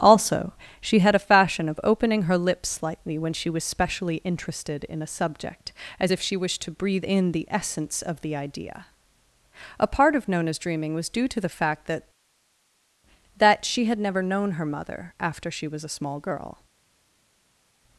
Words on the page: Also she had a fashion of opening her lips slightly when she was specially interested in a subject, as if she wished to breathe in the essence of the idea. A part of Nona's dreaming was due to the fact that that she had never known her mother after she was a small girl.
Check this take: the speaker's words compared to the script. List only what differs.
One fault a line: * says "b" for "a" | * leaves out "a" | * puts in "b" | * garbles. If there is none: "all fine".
all fine